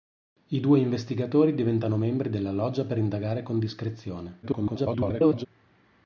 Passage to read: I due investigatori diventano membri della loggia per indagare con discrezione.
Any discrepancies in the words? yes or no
yes